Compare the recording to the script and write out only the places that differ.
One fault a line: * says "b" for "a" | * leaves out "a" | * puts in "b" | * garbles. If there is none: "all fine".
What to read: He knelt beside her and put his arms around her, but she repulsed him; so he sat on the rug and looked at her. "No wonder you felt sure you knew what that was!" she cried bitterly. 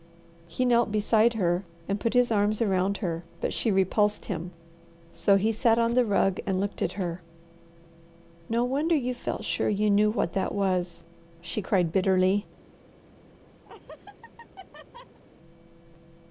all fine